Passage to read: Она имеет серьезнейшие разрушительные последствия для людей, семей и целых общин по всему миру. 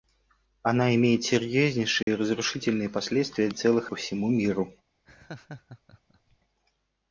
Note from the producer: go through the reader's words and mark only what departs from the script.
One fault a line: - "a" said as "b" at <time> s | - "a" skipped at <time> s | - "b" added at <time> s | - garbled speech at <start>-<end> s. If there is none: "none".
- "для людей семей" skipped at 3.5 s
- "общин" skipped at 3.9 s